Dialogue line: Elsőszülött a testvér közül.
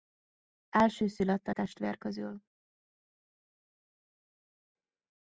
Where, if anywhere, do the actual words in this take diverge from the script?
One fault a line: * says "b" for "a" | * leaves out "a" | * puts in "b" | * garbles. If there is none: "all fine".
all fine